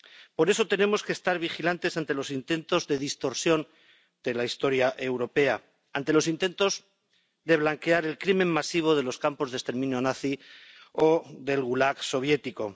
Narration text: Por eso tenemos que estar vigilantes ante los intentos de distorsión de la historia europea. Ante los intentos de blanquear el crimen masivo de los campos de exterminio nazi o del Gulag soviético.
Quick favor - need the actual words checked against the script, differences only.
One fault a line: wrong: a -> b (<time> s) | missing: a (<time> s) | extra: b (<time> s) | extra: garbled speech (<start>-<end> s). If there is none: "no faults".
no faults